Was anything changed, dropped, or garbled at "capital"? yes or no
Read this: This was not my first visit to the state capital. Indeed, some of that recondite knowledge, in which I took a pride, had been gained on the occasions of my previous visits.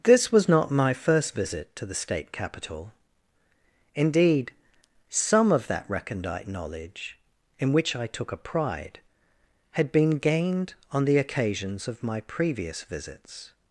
no